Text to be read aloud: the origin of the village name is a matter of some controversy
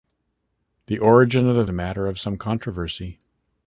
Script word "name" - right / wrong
wrong